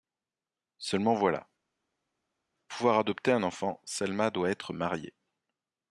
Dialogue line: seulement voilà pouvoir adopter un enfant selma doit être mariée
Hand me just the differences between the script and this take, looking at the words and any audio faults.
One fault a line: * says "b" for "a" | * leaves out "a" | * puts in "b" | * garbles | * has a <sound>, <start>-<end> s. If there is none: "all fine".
all fine